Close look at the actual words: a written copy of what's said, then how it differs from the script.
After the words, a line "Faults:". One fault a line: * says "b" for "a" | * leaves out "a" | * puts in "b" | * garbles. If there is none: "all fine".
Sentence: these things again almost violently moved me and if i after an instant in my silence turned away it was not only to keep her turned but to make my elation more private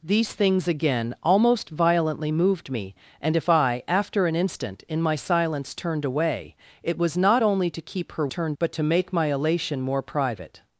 these things again almost violently moved me and if i after an instant in my silence turned away it was not only to keep her turned but to make my elation more private
Faults:
all fine